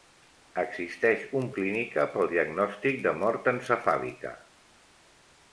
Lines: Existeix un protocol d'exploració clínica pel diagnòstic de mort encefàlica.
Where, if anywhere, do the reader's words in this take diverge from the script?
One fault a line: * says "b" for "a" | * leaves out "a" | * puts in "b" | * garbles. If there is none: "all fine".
* leaves out "protocol d'exploració"